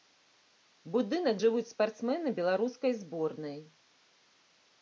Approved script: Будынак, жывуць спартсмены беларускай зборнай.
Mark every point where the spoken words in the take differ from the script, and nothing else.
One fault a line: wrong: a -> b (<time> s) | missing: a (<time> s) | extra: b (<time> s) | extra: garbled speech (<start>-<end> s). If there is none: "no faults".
no faults